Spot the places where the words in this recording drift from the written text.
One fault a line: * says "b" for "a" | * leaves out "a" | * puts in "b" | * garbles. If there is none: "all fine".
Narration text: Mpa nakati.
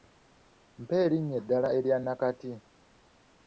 * puts in "erinnya eddala erya"